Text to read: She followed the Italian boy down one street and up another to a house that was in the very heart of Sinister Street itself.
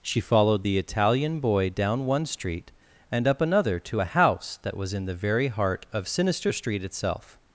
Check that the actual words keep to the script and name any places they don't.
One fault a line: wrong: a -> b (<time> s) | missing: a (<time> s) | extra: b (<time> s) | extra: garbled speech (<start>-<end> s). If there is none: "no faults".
no faults